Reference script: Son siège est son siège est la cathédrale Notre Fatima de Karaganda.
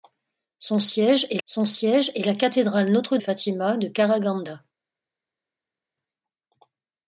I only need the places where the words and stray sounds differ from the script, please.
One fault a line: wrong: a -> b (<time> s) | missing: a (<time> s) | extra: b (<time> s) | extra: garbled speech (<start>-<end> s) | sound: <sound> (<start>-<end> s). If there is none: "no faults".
no faults